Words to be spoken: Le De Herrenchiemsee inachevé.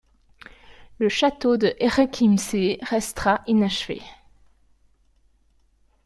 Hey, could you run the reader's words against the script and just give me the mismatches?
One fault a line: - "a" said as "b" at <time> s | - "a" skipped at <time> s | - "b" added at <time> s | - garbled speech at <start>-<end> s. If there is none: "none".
- "Château" added at 1.1 s
- "restera" added at 2.8 s